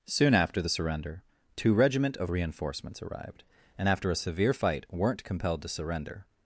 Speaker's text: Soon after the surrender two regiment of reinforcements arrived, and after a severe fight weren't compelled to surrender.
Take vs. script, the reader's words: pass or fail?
pass